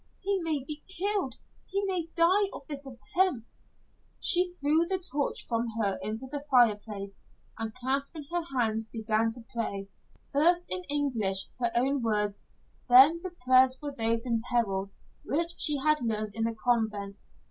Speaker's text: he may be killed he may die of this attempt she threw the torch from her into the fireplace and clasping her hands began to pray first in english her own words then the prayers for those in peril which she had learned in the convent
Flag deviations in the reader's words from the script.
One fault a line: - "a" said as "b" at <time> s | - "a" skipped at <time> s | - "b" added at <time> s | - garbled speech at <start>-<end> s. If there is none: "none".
none